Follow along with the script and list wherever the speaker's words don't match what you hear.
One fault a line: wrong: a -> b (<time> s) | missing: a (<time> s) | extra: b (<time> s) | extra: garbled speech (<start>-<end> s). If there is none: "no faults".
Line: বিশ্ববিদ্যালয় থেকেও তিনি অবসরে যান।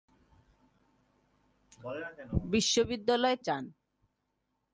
missing: থেকেও তিনি অবসরে (3.4 s)